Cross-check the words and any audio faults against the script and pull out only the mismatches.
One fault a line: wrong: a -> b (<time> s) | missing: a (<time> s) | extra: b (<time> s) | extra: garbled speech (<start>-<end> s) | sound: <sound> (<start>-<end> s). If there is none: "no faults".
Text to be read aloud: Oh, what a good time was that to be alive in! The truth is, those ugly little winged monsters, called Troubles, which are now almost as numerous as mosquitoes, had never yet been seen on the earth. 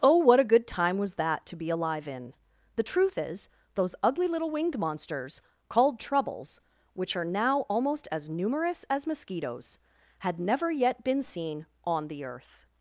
no faults